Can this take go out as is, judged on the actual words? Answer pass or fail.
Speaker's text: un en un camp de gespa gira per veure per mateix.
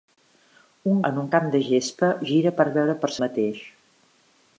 pass